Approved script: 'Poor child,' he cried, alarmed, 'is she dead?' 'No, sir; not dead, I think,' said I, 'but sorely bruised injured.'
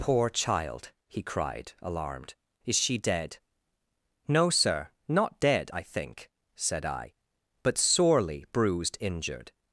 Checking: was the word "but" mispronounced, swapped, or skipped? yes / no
no